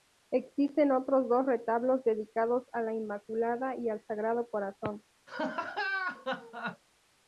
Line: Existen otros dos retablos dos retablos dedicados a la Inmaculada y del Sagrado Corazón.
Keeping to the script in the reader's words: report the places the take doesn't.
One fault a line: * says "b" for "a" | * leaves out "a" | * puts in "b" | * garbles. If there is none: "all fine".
* leaves out "dos retablos"
* says "al" for "del"